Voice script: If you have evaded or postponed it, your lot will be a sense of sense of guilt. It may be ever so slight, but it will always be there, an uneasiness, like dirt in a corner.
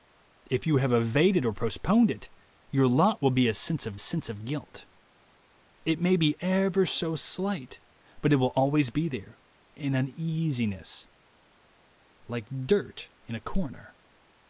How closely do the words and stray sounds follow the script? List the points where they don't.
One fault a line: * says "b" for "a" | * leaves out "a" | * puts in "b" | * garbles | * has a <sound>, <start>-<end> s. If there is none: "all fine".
all fine